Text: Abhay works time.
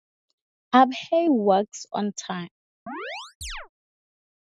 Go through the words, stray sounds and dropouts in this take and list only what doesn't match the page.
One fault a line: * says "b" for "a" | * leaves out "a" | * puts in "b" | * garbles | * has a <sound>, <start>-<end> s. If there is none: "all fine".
* puts in "on"
* has a chirp, 2.9-3.7 s